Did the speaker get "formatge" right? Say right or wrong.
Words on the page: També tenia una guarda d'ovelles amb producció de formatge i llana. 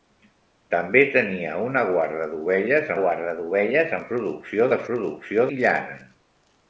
wrong